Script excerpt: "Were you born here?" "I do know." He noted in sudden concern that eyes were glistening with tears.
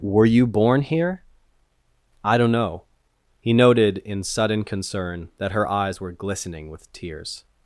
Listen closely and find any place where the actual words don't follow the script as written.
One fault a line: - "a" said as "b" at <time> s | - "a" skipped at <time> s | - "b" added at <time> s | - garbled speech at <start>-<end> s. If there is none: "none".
- "do" said as "don't" at 2.4 s
- "her" added at 5.5 s